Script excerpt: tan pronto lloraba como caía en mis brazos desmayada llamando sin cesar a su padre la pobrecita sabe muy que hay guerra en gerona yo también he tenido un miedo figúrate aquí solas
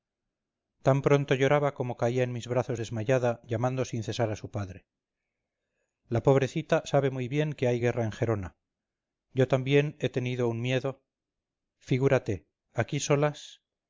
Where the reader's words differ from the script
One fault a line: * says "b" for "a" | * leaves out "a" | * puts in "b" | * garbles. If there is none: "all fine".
* puts in "bien"